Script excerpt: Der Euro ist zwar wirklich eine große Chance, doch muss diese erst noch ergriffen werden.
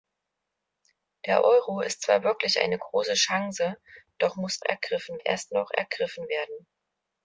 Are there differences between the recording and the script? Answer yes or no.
yes